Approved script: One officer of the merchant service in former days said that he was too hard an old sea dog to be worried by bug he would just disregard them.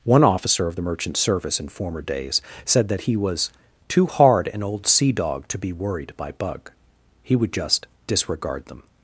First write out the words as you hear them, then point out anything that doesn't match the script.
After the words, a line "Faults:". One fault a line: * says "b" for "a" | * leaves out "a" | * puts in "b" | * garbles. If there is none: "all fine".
One officer of the merchant service in former days said that he was too hard an old sea dog to be worried by bug he would just disregard them.
Faults:
all fine